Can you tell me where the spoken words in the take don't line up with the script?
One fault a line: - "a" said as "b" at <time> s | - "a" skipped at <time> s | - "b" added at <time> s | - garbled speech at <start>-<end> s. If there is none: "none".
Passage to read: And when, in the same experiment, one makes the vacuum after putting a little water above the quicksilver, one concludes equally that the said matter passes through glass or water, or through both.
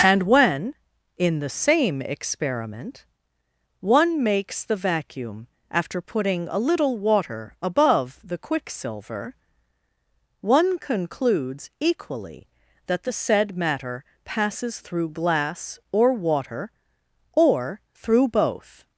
none